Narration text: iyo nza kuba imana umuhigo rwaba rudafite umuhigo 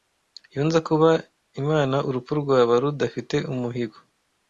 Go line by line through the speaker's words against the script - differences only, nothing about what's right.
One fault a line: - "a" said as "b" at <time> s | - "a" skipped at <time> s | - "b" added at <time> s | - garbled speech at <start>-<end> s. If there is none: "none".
- "umuhigo" said as "urupfu" at 2.1 s